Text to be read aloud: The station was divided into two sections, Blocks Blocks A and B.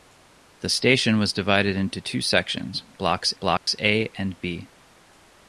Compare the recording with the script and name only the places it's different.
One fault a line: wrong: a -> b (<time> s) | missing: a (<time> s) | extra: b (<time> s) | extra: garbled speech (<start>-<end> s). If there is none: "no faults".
no faults